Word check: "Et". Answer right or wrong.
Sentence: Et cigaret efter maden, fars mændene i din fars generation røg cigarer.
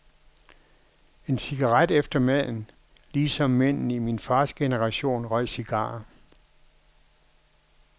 wrong